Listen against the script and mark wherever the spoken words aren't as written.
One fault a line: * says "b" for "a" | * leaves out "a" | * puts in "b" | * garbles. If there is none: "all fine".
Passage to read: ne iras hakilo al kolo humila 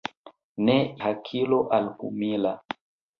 * leaves out "iras"
* leaves out "kolo"